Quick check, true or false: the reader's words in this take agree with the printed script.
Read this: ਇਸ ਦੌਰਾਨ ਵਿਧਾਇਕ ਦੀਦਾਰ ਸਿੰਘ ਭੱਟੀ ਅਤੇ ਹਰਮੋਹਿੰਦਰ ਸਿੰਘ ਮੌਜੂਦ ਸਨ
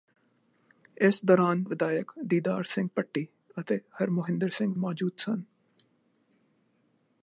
true